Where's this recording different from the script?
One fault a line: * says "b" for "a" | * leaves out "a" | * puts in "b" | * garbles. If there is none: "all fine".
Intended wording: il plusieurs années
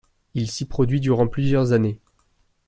* puts in "s'y produit durant"